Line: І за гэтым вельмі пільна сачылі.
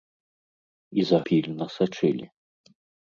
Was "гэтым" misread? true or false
true